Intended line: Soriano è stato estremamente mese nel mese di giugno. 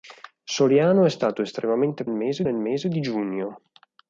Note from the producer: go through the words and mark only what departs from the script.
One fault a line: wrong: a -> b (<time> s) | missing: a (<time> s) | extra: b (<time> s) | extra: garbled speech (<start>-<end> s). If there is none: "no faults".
no faults